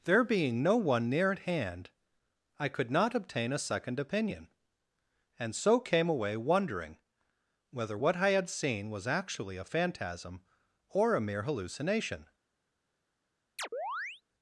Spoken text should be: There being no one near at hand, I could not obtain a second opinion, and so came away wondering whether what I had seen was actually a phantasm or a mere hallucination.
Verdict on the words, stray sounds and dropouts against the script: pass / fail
fail